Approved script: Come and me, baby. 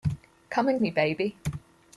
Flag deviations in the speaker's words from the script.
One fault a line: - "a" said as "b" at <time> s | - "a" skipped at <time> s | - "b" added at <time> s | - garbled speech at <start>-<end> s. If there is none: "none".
none